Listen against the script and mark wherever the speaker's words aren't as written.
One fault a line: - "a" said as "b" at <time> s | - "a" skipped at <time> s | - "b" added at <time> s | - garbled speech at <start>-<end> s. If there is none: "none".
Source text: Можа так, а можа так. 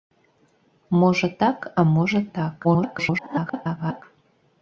- garbled speech at 2.6-4.0 s